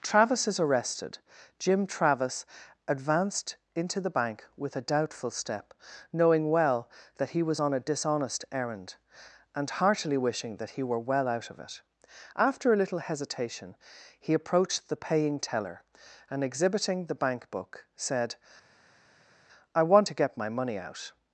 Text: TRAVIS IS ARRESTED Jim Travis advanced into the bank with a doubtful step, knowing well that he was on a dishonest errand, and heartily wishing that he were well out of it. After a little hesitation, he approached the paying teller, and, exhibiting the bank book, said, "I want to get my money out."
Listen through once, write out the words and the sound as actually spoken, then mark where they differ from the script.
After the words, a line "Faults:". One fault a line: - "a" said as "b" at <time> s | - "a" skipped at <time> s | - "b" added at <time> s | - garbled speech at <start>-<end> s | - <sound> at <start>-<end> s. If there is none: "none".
TRAVIS IS ARRESTED Jim Travis advanced into the bank with a doubtful step, knowing well that he was on a dishonest errand, and heartily wishing that he were well out of it. After a little hesitation, he approached the paying teller, and, exhibiting the bank book, said, "I want to get my money out."
Faults:
none